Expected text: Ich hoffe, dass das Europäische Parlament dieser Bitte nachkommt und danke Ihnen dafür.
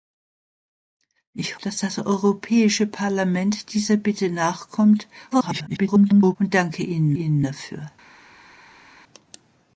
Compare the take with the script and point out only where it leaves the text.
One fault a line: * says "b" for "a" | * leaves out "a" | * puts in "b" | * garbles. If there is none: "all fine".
* leaves out "hoffe"
* garbles
* puts in "Ihnen"